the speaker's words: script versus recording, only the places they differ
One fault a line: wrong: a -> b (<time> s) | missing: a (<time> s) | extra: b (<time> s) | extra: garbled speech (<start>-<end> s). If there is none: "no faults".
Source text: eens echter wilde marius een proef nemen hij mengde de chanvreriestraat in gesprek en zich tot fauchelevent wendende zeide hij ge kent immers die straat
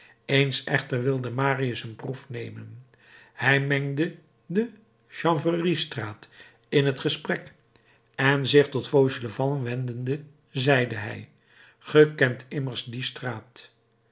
extra: het (6.8 s)